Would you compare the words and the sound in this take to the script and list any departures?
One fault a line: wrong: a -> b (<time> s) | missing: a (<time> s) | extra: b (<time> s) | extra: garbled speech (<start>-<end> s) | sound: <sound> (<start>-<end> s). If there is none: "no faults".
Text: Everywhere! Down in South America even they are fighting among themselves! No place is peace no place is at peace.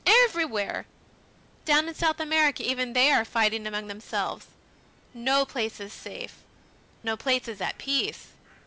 wrong: peace -> safe (5.9 s)